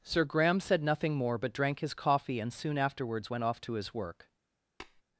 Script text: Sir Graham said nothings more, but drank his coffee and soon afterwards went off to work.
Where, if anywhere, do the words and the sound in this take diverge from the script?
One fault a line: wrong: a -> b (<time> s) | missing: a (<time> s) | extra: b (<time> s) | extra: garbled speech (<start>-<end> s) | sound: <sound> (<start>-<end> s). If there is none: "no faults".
wrong: nothings -> nothing (0.8 s)
extra: his (3.7 s)
sound: tap (4.8-5.0 s)